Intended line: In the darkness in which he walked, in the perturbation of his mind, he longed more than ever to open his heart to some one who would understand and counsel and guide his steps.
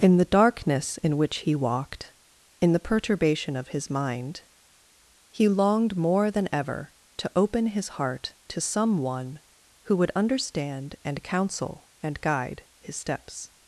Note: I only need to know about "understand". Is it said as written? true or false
true